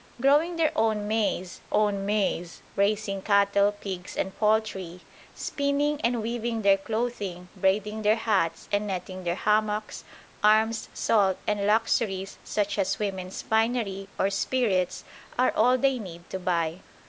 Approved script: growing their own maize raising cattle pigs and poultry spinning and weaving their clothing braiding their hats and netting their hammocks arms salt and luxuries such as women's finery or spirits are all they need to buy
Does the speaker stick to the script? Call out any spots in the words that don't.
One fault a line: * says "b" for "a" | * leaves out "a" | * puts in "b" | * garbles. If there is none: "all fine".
* puts in "own maize"